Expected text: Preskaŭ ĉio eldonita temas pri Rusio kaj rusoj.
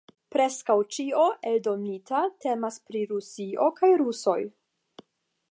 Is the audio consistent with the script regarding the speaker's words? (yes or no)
yes